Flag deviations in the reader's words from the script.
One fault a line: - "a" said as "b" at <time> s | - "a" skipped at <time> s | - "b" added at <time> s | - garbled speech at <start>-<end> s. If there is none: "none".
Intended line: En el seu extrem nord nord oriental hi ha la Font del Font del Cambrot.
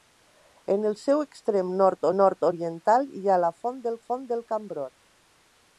none